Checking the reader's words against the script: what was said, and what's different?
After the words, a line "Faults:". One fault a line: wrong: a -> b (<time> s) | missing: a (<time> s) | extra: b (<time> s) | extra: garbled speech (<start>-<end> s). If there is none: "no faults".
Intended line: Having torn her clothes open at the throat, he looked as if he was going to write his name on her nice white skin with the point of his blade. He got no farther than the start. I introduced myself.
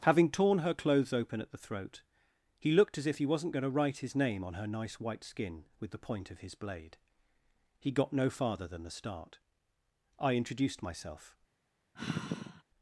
Having torn her clothes open at the throat, he looked as if he wasn't going to write his name on her nice white skin with the point of his blade. He got no farther than the start. I introduced myself.
Faults:
wrong: was -> wasn't (3.2 s)